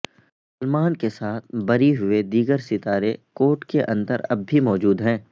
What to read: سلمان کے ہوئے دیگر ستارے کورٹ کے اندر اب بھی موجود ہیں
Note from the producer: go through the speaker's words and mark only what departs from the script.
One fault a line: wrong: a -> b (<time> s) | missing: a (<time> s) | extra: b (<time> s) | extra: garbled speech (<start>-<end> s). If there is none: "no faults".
extra: ساتھ بری (1.1 s)